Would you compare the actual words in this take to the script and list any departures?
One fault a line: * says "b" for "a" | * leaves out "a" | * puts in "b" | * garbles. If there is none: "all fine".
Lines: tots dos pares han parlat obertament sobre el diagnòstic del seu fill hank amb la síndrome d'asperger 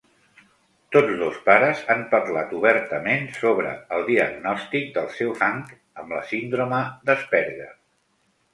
* leaves out "fill"